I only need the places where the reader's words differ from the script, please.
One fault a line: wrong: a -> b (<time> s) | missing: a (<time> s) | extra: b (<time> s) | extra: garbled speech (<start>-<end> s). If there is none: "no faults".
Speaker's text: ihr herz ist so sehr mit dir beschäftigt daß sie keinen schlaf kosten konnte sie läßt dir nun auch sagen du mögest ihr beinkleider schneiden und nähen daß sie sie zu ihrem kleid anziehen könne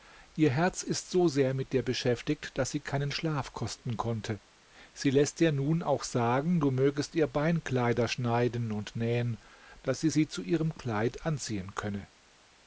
no faults